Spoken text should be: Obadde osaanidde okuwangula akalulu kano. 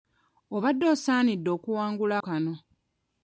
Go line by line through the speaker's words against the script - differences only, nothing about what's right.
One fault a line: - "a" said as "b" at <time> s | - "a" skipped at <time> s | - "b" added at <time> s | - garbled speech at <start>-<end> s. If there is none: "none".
- "akalulu" skipped at 2.1 s